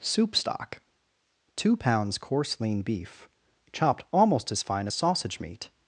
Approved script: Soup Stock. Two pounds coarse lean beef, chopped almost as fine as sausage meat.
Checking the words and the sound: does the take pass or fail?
pass